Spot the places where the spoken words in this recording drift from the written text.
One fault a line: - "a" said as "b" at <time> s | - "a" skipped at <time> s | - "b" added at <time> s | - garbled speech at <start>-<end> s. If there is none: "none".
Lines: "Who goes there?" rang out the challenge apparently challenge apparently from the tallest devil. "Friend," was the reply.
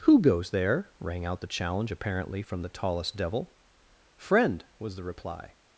- "challenge apparently" skipped at 2.4 s